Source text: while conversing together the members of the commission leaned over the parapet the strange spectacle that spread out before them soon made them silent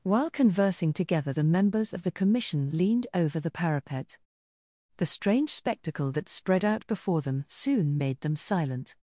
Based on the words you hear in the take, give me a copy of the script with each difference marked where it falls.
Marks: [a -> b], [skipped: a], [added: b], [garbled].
while conversing together the members of the commission leaned over the parapet the strange spectacle that spread out before them soon made them silent